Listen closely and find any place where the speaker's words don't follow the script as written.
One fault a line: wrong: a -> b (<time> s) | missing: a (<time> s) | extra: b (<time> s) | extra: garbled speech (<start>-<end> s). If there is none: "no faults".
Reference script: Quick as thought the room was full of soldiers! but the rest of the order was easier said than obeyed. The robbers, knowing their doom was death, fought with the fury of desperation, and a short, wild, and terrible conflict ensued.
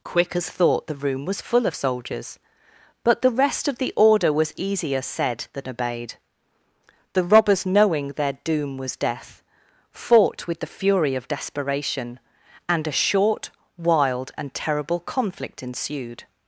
no faults